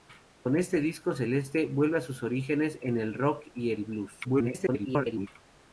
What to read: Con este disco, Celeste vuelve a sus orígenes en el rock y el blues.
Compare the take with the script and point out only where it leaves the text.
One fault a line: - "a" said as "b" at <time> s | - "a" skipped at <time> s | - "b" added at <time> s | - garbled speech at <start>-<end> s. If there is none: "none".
- garbled speech at 4.2-5.3 s